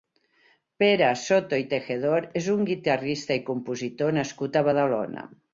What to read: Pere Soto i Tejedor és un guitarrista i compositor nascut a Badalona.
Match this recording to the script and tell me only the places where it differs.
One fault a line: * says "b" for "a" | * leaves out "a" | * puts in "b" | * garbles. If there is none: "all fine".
all fine